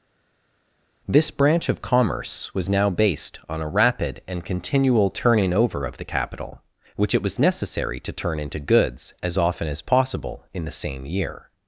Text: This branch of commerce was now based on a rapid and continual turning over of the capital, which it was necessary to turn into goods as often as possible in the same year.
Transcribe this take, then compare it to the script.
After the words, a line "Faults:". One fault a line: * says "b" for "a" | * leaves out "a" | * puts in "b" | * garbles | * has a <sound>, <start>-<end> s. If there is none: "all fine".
This branch of commerce was now based on a rapid and continual turning over of the capital, which it was necessary to turn into goods as often as possible in the same year.
Faults:
all fine